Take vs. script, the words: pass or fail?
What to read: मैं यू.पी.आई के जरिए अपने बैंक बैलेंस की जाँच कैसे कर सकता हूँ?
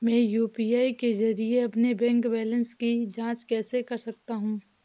pass